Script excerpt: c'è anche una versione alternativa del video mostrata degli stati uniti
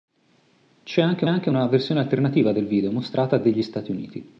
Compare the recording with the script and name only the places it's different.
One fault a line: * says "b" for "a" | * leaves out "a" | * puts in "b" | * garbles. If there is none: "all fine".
* puts in "anche"